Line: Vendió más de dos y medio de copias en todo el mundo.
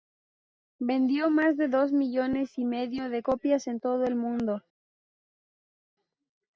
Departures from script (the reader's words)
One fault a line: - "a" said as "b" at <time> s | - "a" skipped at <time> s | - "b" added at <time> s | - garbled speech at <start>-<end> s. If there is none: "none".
- "millones" added at 1.9 s